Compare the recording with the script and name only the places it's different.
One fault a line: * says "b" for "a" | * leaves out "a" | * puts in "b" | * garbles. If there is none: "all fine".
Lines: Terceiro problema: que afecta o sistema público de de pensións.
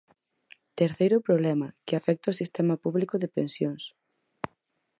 * leaves out "de"